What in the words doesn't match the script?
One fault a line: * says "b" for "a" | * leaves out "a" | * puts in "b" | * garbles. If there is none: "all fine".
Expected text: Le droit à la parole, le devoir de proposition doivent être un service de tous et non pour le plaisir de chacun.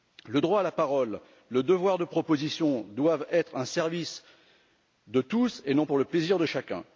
all fine